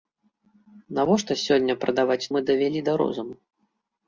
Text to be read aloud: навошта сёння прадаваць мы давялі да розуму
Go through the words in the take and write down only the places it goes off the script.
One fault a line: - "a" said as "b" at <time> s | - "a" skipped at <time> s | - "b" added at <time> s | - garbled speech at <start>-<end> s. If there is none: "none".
none